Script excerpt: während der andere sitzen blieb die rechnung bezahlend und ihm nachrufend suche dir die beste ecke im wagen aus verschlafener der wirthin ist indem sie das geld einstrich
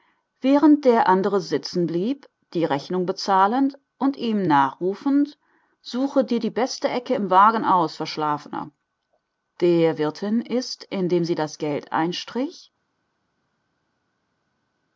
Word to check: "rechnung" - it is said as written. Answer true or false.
true